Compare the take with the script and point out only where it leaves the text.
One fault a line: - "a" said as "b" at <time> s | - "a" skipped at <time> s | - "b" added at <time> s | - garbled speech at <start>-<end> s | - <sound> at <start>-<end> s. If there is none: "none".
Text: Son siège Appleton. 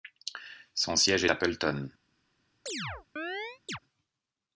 - chirp at 2.7-3.8 s